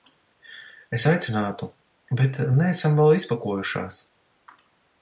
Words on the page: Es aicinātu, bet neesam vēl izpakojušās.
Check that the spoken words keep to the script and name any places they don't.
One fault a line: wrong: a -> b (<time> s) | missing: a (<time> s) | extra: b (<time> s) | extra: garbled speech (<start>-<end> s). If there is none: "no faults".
no faults